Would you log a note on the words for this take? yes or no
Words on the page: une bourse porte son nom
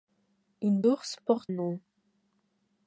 yes